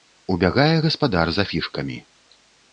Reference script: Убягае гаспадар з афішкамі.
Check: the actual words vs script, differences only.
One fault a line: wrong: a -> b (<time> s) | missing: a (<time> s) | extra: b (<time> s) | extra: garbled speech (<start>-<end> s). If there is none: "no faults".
no faults